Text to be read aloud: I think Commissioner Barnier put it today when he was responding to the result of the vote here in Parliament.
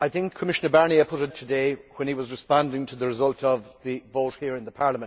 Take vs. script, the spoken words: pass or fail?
pass